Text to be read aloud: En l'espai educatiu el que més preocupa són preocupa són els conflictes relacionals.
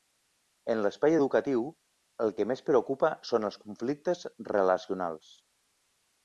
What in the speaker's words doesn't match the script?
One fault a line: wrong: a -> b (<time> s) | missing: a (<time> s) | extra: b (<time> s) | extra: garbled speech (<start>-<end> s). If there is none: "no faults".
missing: preocupa són (3.5 s)